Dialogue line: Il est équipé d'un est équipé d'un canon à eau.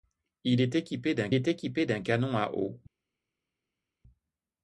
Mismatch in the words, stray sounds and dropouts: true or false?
false